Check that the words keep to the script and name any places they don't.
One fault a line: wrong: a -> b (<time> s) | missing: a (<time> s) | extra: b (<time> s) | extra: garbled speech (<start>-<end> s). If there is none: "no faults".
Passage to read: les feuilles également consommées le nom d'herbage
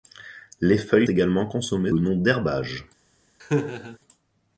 no faults